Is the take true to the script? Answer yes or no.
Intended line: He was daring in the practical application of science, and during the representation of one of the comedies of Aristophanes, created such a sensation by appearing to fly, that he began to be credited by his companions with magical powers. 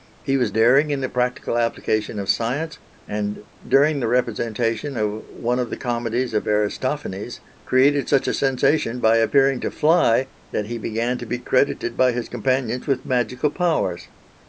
yes